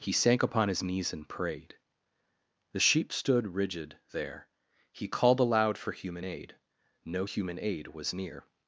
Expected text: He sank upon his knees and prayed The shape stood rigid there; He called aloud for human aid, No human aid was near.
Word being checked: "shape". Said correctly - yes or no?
no